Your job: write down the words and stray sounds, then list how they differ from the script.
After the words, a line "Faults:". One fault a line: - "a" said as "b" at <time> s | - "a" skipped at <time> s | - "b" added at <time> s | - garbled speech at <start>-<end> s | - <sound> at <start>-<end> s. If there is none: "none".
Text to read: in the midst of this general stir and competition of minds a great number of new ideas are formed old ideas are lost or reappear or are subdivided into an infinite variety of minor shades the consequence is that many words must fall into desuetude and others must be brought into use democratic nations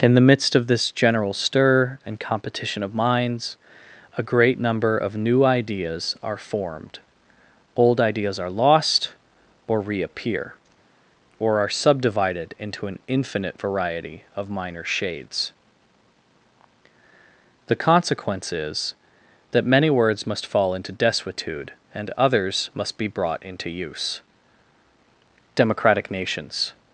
in the midst of this general stir and competition of minds a great number of new ideas are formed old ideas are lost or reappear or are subdivided into an infinite variety of minor shades the consequence is that many words must fall into desuetude and others must be brought into use democratic nations
Faults:
none